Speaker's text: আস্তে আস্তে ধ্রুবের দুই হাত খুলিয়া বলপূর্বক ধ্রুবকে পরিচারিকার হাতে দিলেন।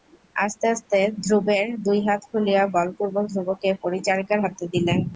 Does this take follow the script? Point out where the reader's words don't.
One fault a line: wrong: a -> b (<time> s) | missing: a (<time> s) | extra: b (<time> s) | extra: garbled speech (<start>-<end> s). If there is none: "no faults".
no faults